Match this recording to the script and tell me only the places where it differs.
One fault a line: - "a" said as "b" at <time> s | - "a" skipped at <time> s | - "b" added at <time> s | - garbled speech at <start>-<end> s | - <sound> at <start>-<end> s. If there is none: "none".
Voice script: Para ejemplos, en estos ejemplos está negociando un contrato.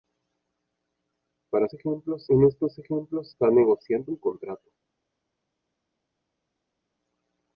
none